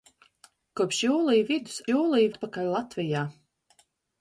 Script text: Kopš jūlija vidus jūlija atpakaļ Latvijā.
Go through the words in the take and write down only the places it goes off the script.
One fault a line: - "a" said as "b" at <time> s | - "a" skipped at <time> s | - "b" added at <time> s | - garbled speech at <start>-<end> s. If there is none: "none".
none